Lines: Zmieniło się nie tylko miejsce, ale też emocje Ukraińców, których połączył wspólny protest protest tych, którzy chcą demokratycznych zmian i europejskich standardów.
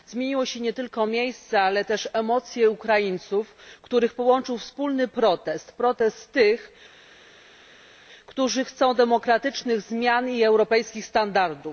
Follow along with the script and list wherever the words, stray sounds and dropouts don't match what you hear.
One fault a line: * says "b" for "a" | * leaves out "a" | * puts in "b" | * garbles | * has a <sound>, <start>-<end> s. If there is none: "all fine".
all fine